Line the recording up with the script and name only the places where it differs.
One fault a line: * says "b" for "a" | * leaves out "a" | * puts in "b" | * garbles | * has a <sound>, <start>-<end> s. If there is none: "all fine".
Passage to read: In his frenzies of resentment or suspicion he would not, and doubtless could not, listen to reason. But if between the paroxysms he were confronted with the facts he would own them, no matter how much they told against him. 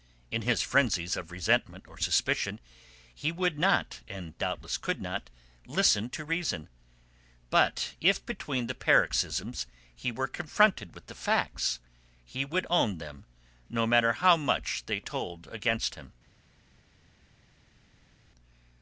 all fine